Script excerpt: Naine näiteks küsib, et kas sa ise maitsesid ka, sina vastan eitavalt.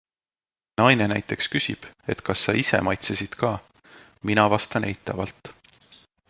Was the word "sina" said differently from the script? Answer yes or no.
yes